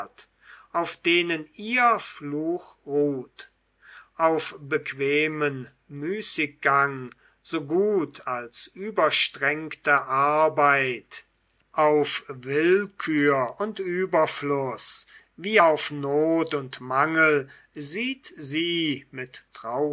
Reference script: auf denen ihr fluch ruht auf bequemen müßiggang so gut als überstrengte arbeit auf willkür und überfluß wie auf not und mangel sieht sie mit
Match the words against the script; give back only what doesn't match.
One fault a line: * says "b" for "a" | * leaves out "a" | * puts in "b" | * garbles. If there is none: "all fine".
all fine